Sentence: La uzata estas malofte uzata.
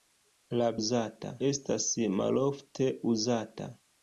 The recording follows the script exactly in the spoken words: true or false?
true